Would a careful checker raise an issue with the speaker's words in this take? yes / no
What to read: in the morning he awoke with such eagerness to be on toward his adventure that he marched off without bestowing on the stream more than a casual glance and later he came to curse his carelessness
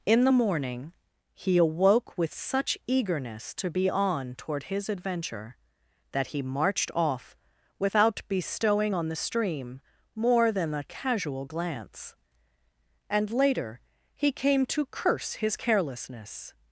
no